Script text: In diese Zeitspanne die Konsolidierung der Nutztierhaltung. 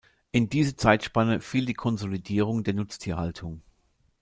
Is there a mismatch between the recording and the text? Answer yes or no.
yes